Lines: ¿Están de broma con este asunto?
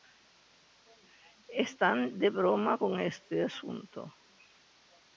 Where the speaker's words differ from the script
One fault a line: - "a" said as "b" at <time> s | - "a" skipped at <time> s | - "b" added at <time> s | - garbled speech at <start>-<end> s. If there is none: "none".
none